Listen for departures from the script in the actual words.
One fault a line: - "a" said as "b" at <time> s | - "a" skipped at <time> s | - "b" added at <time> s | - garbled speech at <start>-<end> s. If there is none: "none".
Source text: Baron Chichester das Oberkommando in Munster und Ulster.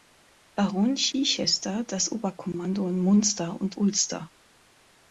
none